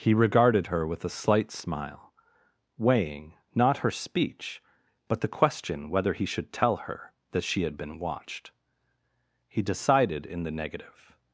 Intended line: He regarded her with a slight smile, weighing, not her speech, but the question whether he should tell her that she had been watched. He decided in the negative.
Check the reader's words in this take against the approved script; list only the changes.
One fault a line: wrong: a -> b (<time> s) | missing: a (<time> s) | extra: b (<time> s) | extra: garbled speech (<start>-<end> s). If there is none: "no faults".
no faults